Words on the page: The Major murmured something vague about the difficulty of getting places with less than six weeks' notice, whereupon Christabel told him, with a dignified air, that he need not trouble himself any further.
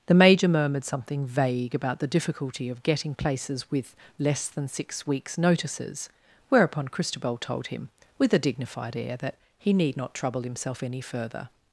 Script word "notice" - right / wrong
wrong